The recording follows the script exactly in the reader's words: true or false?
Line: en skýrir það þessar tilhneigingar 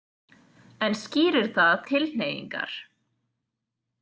false